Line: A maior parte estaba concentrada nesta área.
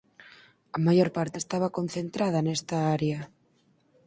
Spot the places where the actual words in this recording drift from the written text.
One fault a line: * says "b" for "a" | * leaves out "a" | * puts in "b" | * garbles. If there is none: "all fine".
all fine